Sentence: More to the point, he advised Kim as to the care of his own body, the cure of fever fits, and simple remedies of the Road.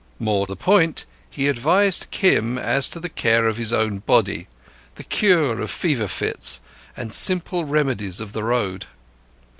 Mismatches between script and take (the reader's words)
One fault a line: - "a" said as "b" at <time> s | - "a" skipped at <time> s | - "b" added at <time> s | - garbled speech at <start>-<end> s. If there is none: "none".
- "to" skipped at 0.5 s